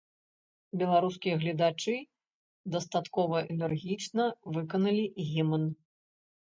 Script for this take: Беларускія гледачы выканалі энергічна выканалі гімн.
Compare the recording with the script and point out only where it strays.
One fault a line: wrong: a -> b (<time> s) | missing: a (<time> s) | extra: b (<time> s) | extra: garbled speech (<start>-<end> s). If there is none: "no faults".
wrong: выканалі -> дастаткова (2.8 s)